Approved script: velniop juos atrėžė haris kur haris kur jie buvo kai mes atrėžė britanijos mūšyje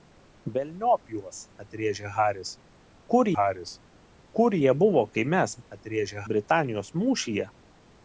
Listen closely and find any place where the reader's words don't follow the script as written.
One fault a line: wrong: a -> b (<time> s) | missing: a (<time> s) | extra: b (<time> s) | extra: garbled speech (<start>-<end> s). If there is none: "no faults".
no faults